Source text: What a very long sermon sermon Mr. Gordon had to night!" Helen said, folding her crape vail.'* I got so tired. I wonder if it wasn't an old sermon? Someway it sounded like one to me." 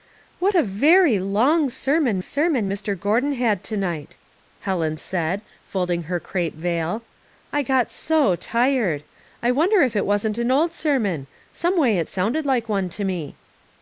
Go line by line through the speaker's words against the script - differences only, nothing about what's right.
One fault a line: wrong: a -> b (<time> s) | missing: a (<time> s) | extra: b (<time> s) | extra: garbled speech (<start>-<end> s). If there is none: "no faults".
no faults